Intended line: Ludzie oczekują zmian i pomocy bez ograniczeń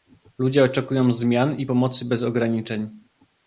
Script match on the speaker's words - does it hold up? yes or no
yes